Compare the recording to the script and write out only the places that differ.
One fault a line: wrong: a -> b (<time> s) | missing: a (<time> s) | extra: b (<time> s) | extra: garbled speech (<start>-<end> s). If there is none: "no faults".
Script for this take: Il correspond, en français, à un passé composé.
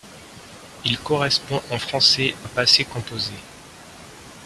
missing: à (2.3 s)